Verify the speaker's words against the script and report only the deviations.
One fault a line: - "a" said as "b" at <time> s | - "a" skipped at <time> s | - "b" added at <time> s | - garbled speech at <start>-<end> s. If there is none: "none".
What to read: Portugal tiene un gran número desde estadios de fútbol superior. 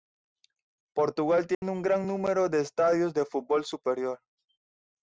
- "desde" said as "de" at 2.5 s